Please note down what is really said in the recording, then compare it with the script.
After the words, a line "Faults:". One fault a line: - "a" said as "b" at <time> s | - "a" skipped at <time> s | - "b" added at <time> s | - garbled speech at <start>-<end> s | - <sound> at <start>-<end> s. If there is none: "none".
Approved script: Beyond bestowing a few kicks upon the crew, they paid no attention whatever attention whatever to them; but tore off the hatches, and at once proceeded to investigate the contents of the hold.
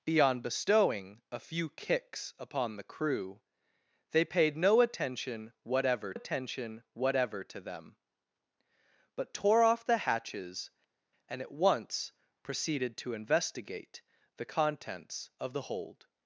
Beyond bestowing a few kicks upon the crew, they paid no attention whatever attention whatever to them; but tore off the hatches, and at once proceeded to investigate the contents of the hold.
Faults:
none